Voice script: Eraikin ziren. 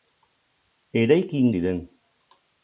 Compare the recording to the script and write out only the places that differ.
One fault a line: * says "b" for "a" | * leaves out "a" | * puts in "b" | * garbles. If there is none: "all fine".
all fine